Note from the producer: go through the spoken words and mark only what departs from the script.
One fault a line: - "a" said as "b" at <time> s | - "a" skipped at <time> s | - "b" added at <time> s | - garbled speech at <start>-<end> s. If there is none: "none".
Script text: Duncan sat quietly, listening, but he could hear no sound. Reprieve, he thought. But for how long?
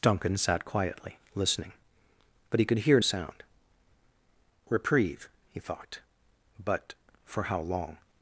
- "no" skipped at 3.0 s